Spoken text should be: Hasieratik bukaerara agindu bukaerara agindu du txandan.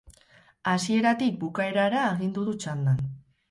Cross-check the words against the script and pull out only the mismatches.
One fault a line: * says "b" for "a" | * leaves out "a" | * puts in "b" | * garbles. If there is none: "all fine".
* leaves out "bukaerara agindu"